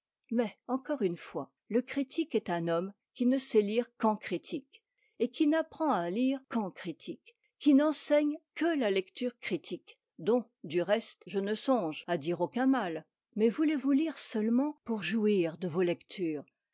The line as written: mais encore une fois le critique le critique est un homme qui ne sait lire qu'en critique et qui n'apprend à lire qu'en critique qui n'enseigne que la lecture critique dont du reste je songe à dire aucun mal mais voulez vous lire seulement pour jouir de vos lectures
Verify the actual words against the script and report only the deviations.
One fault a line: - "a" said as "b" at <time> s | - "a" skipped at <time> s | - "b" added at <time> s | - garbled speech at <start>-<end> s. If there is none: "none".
- "le critique" skipped at 2.3 s
- "ne" added at 11.4 s